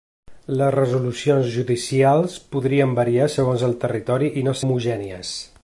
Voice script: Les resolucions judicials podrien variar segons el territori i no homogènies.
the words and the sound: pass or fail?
pass